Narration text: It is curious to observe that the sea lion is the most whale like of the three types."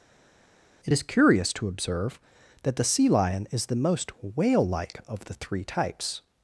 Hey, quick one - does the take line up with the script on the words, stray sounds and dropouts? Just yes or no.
yes